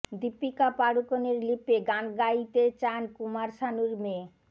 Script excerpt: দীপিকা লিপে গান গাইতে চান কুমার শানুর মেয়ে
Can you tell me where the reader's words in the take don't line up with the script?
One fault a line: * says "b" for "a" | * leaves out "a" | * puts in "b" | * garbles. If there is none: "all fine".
* puts in "পাড়ুকোনের"